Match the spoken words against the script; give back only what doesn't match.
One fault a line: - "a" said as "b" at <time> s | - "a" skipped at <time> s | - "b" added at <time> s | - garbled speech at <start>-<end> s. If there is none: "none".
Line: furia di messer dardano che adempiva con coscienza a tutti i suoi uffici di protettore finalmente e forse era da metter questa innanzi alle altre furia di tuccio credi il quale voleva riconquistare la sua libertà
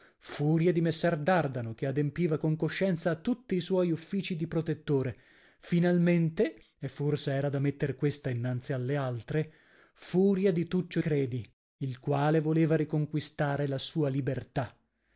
none